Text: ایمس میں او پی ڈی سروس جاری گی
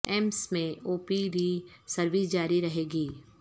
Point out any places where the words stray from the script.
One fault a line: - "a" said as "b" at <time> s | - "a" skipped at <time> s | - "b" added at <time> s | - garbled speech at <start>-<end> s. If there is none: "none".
- "رہے" added at 2.6 s